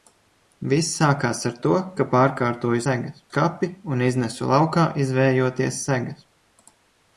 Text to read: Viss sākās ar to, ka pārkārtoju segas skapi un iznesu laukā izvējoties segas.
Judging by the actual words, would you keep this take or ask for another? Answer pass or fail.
pass